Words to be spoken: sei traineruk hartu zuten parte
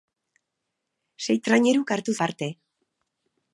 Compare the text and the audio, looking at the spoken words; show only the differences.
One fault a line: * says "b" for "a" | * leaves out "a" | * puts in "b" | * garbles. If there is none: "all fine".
* leaves out "zuten"